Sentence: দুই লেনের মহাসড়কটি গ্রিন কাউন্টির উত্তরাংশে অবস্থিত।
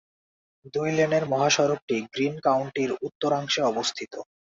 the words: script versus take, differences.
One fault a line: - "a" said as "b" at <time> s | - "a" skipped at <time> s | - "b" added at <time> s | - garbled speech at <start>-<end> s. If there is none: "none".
none